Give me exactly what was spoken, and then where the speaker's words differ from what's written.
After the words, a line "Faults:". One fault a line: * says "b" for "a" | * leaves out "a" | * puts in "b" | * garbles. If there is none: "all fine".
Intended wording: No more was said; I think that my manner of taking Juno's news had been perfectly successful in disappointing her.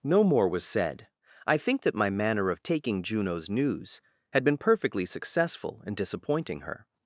No more was said; I think that my manner of taking Juno's news had been perfectly successful in disappointing her.
Faults:
all fine